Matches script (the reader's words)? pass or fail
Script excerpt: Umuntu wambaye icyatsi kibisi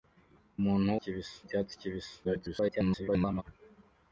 fail